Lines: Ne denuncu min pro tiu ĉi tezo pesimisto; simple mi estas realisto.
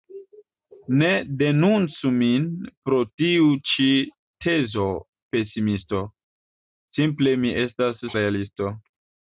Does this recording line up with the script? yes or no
yes